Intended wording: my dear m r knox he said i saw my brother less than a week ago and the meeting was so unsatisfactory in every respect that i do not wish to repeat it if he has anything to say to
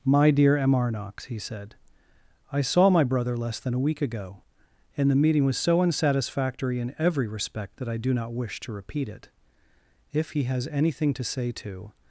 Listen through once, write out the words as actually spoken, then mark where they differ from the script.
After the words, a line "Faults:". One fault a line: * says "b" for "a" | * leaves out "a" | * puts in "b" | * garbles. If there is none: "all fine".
my dear m r knox he said i saw my brother less than a week ago and the meeting was so unsatisfactory in every respect that i do not wish to repeat it if he has anything to say to
Faults:
all fine